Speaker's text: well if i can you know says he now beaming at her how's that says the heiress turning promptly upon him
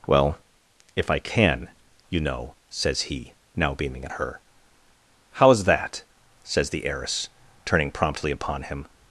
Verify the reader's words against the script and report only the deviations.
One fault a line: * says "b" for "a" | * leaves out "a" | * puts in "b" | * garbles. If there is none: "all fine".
all fine